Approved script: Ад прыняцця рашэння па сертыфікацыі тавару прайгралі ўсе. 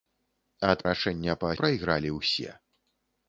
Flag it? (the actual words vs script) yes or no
yes